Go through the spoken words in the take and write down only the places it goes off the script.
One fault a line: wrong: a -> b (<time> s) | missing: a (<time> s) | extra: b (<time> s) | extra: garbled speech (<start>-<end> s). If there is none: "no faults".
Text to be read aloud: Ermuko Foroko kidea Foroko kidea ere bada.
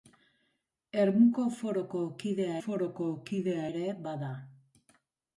no faults